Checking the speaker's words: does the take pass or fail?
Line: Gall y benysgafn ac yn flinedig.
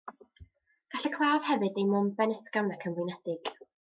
fail